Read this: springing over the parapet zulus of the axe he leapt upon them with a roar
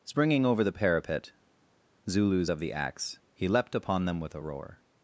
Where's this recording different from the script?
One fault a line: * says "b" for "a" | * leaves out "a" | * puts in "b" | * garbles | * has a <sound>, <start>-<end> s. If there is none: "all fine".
all fine